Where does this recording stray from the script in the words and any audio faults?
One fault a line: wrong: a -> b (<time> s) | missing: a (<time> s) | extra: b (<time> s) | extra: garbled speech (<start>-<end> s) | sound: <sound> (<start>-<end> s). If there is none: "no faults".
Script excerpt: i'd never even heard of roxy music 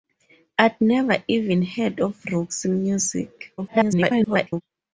extra: garbled speech (3.6-4.6 s)